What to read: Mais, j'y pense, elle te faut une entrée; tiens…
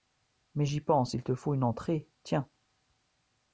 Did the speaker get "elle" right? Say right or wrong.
wrong